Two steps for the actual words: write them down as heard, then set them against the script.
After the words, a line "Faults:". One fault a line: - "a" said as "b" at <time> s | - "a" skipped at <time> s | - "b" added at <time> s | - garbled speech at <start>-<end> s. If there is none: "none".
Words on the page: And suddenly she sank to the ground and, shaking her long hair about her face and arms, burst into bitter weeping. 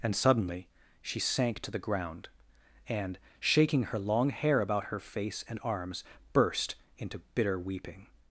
And suddenly she sank to the ground and, shaking her long hair about her face and arms, burst into bitter weeping.
Faults:
none